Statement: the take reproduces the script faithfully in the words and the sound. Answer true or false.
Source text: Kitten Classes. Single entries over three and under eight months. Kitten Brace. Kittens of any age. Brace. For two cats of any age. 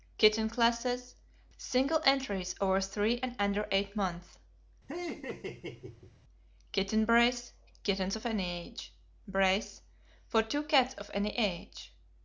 false